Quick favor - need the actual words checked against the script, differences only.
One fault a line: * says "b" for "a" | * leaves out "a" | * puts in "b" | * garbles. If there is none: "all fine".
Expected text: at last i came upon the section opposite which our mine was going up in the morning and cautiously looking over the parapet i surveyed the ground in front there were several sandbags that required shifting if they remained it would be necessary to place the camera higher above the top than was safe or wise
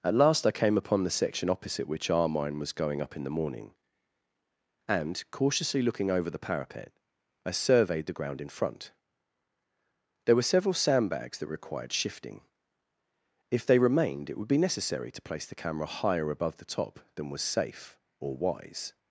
all fine